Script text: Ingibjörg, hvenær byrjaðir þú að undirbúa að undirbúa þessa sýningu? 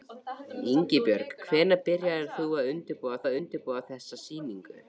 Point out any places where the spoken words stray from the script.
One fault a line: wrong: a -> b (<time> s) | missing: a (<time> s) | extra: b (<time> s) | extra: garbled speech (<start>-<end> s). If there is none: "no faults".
no faults